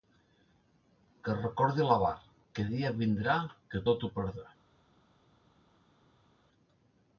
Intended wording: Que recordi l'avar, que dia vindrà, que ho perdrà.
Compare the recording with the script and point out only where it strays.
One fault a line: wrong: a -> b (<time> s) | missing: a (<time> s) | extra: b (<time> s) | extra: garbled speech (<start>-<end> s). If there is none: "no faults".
extra: tot (3.9 s)